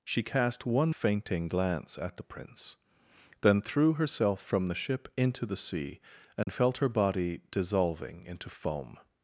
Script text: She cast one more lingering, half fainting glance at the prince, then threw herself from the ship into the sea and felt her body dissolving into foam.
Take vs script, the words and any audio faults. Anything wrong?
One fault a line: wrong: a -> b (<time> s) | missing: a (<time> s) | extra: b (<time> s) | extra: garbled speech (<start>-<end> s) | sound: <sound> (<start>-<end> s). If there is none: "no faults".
missing: more lingering half (0.9 s)
sound: dropout (6.4-6.5 s)